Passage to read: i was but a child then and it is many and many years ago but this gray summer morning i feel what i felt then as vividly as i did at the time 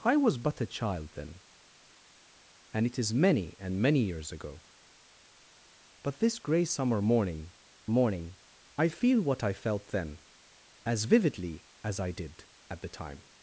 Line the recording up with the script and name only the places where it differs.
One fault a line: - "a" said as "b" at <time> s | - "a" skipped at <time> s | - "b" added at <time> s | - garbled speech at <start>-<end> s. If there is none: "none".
- "morning" added at 7.9 s